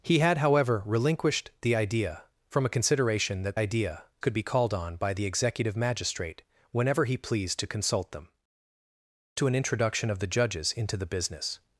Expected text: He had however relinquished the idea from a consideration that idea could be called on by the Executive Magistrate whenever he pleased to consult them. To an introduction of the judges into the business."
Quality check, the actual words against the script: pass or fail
pass